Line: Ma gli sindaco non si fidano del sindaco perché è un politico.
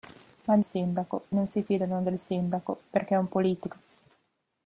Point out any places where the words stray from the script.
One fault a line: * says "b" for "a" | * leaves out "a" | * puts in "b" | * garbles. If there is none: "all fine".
all fine